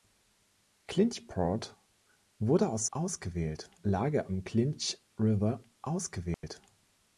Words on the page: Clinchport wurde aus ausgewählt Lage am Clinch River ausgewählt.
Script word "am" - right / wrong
right